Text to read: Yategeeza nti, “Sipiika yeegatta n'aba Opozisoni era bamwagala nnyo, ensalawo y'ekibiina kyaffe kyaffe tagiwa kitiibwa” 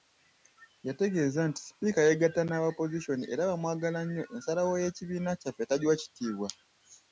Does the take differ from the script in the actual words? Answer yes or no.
yes